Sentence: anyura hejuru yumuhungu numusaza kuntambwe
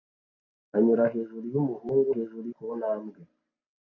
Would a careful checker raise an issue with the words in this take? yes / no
yes